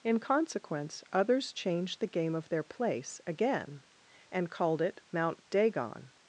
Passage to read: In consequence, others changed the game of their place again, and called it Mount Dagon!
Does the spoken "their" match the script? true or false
true